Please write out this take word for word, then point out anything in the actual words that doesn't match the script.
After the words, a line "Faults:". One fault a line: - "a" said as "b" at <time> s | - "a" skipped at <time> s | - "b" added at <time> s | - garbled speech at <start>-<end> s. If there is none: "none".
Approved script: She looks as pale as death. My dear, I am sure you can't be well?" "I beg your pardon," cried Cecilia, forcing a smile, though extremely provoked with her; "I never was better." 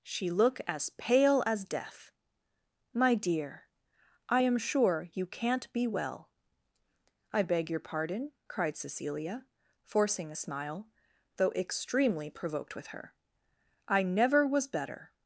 She look as pale as death. My dear, I am sure you can't be well?" "I beg your pardon," cried Cecilia, forcing a smile, though extremely provoked with her; "I never was better."
Faults:
- "looks" said as "look" at 0.3 s